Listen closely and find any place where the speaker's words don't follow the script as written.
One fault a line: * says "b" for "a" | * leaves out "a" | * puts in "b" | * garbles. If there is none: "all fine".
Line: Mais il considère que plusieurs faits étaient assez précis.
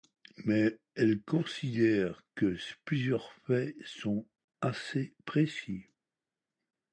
* says "elle" for "il"
* says "sont" for "étaient"